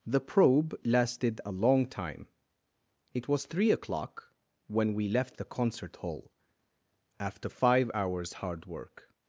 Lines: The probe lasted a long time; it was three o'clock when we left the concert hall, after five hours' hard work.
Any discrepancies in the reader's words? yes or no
no